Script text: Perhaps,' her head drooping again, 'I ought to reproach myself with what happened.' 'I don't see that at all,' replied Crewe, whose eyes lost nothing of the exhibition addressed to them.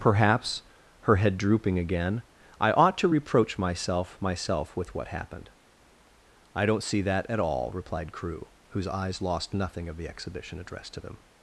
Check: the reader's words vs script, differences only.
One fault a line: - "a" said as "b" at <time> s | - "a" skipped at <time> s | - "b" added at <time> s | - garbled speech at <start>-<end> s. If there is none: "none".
- "myself" added at 4.2 s